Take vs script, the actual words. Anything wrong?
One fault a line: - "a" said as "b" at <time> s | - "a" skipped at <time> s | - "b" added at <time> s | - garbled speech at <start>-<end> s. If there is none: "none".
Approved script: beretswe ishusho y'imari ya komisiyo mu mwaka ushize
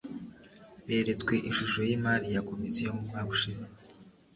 none